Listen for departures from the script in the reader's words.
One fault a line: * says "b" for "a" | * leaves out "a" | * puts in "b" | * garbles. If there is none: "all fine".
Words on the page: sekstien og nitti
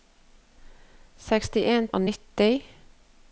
all fine